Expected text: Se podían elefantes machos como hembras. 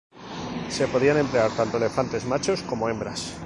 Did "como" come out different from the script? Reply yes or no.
no